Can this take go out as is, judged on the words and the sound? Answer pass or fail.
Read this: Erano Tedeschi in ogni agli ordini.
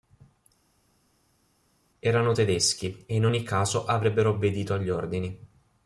fail